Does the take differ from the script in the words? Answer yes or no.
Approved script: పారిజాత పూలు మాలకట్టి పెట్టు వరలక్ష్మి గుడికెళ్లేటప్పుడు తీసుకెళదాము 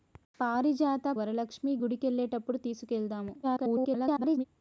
yes